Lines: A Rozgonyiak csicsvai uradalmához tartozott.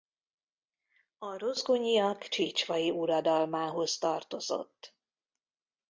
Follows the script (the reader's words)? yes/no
yes